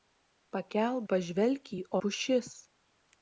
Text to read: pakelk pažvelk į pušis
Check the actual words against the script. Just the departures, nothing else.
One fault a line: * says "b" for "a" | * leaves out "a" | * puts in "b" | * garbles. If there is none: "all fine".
all fine